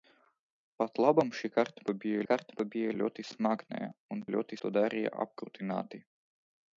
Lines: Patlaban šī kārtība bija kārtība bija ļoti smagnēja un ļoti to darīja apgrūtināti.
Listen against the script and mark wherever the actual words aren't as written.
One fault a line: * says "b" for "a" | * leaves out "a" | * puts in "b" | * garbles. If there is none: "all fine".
all fine